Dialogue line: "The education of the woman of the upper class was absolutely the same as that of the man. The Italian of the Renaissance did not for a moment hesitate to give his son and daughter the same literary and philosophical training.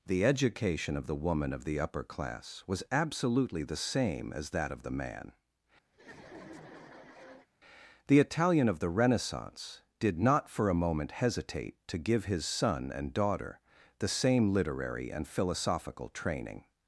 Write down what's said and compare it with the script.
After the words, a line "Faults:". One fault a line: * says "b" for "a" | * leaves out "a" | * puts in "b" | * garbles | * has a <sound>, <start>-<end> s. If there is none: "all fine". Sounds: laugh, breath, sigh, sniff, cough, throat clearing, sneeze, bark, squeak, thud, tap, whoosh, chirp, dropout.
"The education of the woman of the upper class was absolutely the same as that of the man. The Italian of the Renaissance did not for a moment hesitate to give his son and daughter the same literary and philosophical training.
Faults:
* has a laugh, 5.9-7.5 s